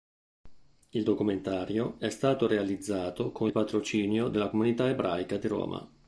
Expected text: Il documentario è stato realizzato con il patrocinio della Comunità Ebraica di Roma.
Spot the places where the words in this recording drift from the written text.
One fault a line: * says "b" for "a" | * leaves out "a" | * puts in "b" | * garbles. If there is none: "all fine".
all fine